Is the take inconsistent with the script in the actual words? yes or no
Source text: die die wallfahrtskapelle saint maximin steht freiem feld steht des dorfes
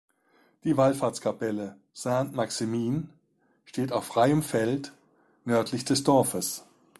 yes